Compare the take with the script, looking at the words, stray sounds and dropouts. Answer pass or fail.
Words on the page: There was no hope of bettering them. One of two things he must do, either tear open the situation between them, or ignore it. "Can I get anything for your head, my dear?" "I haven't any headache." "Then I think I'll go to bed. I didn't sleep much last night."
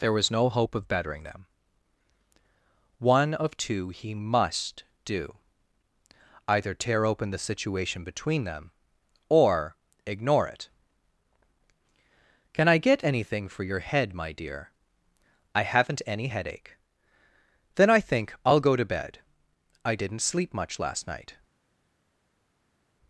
fail